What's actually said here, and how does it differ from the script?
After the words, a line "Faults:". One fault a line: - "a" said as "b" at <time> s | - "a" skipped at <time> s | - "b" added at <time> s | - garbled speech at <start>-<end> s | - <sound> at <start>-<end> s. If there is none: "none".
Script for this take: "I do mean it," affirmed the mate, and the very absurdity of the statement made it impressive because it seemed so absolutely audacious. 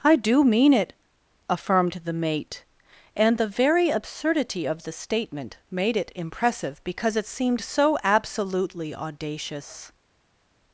"I do mean it," affirmed the mate, and the very absurdity of the statement made it impressive because it seemed so absolutely audacious.
Faults:
none